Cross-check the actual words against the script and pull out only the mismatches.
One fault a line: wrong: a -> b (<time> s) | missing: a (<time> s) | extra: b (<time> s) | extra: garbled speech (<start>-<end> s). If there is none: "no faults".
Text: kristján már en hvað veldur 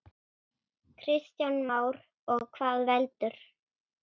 wrong: en -> og (2.4 s)